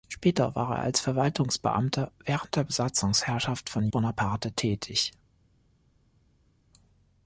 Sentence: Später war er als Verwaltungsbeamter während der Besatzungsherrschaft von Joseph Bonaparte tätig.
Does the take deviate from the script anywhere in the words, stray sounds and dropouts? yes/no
yes